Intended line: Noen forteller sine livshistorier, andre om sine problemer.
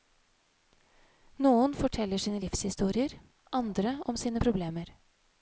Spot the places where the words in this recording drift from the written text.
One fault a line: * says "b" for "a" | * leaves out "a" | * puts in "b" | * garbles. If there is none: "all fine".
all fine